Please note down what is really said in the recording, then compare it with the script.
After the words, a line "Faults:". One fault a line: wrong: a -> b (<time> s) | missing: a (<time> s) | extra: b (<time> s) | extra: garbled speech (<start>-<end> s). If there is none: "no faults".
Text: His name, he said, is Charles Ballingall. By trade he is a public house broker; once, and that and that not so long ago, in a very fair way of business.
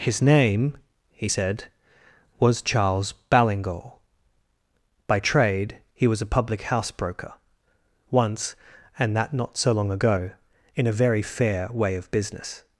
His name, he said, was Charles Ballingall. By trade he was a public house broker; once, and that not so long ago, in a very fair way of business.
Faults:
wrong: is -> was (2.4 s)
wrong: is -> was (6.1 s)
missing: and that (9.3 s)